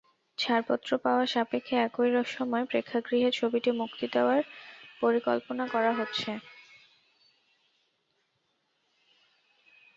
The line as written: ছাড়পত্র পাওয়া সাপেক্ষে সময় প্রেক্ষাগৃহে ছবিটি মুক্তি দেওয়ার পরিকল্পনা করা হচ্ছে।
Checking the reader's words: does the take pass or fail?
fail